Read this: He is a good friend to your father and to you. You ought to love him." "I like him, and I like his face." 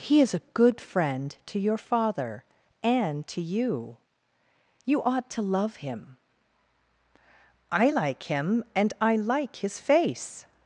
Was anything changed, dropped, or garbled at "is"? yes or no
no